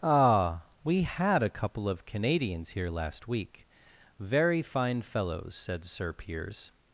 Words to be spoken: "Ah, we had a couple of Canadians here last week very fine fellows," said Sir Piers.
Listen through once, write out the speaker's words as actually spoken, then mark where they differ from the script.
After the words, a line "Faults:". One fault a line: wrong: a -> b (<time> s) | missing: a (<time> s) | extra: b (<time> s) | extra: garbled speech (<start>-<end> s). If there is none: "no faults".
"Ah, we had a couple of Canadians here last week very fine fellows," said Sir Piers.
Faults:
no faults